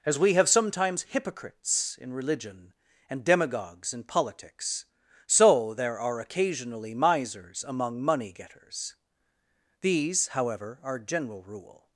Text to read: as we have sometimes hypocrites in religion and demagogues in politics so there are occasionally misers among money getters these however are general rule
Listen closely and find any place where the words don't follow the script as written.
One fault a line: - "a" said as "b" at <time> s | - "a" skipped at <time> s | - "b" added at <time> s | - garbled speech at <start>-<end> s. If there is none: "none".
none